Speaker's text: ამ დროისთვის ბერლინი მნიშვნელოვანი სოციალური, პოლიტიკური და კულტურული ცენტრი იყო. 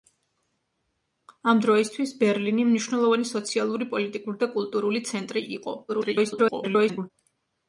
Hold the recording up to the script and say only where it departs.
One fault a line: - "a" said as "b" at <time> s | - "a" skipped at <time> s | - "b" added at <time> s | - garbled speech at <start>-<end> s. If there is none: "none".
- garbled speech at 5.9-7.1 s